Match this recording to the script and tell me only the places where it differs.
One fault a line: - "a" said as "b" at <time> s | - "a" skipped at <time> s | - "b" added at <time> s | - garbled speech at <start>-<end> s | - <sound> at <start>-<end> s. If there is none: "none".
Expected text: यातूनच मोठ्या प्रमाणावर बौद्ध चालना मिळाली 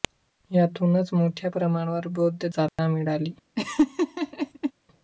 - dropout at 2.7-2.8 s
- laugh at 3.6-4.7 s